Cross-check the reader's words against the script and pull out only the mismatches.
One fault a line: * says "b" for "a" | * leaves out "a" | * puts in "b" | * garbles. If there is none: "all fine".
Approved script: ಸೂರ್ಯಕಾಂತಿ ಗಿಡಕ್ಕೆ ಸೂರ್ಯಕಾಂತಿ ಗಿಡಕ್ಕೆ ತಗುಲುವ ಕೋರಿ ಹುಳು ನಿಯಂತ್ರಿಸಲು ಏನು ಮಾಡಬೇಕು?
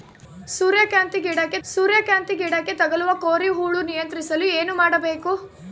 all fine